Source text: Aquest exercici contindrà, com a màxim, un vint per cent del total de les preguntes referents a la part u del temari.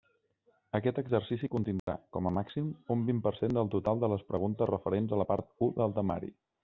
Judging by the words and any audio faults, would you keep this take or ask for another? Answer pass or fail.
fail